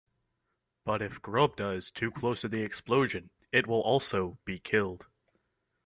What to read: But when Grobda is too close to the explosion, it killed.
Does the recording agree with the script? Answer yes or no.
no